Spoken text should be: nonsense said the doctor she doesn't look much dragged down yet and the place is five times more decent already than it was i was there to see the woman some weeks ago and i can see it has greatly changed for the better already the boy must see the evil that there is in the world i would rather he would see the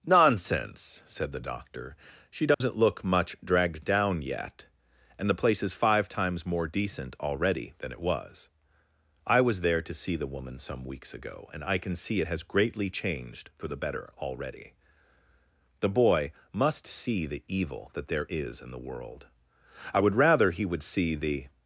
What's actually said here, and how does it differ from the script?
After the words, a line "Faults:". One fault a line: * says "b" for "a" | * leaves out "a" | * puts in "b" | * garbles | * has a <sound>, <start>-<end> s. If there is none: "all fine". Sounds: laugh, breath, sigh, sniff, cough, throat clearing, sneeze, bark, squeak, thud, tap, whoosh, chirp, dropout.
nonsense said the doctor she doesn't look much dragged down yet and the place is five times more decent already than it was i was there to see the woman some weeks ago and i can see it has greatly changed for the better already the boy must see the evil that there is in the world i would rather he would see the
Faults:
* has a dropout, 2.5-2.6 s